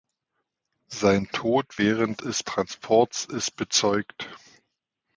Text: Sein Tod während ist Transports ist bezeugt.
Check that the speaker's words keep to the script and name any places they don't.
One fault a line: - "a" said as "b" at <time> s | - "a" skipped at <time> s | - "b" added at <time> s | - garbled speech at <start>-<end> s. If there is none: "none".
none